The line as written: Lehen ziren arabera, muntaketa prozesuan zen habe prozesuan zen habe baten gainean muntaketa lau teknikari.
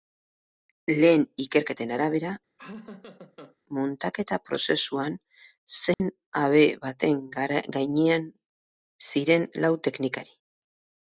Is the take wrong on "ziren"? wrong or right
wrong